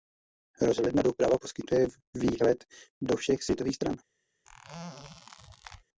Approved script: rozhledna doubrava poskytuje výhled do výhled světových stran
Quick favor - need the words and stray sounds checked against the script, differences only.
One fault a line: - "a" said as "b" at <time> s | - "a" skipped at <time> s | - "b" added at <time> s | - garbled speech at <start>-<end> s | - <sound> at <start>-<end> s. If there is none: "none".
- "výhled" said as "všech" at 3.1 s
- squeak at 4.4-5.8 s